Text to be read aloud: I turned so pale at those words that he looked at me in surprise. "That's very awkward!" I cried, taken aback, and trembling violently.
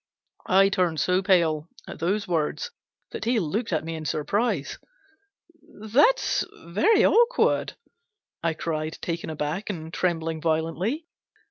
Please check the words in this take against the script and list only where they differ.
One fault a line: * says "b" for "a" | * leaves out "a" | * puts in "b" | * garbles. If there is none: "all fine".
all fine